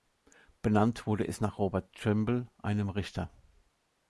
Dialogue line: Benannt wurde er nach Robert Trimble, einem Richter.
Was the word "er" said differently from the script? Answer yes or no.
yes